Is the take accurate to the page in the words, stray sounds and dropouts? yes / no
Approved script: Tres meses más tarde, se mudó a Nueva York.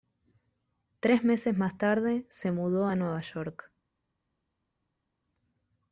yes